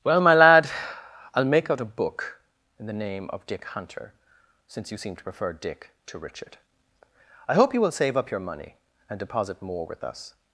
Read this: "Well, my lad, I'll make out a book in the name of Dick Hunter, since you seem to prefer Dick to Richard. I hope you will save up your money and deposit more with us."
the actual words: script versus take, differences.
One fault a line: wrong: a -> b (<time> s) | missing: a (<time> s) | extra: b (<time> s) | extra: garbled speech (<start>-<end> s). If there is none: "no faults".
no faults